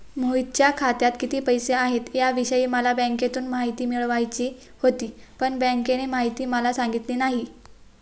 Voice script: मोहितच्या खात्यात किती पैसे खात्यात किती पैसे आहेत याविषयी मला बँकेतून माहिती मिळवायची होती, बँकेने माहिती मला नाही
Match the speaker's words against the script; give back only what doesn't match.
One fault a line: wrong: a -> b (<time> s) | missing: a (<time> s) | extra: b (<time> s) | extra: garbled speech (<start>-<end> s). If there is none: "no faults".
missing: खात्यात किती पैसे (1.7 s)
extra: पण (5.4 s)
extra: सांगितली (6.7 s)